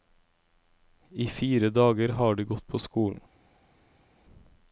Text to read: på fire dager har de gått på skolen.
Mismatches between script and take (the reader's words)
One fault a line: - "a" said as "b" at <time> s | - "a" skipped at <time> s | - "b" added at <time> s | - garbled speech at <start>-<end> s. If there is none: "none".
- "på" said as "I" at 1.1 s